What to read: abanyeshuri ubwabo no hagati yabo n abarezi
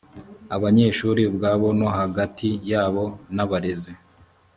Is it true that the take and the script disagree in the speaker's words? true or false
false